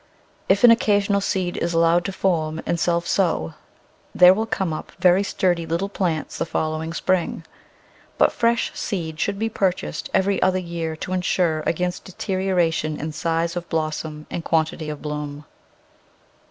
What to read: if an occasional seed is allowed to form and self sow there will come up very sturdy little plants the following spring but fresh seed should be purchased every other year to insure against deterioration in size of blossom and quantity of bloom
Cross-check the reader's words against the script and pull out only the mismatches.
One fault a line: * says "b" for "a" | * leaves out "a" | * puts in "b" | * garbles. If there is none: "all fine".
all fine